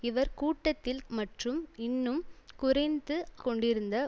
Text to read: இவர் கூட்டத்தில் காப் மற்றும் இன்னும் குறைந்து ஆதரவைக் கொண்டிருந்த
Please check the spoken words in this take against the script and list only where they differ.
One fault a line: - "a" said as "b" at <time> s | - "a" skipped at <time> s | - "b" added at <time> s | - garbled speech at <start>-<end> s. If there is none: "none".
- "காப்" skipped at 1.0 s
- "ஆதரவைக்" skipped at 3.2 s